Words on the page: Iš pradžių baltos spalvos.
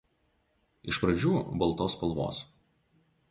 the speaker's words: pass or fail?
pass